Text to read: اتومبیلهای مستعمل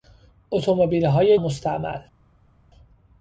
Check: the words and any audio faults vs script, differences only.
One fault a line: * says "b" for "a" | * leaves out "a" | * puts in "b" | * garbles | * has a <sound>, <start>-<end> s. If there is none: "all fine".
all fine